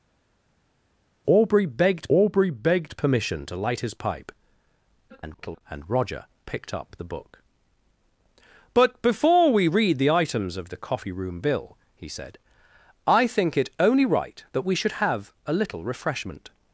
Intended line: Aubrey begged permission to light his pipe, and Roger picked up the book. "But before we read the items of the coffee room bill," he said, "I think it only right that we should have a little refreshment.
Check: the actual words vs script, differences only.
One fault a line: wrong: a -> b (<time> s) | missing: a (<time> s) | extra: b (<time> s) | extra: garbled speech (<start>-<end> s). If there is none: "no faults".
extra: aubrey begged (2.1 s)
extra: garbled speech (5.1-5.6 s)